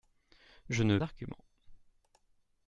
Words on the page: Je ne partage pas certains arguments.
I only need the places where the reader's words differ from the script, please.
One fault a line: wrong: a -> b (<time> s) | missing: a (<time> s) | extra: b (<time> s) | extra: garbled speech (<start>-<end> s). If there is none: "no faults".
missing: partage pas certains (1.0 s)